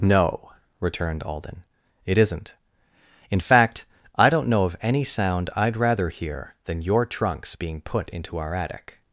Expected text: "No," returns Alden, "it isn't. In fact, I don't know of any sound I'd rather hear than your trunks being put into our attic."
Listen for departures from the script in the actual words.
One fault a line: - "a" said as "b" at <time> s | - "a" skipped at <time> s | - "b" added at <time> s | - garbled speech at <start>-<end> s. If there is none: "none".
- "returns" said as "returned" at 0.8 s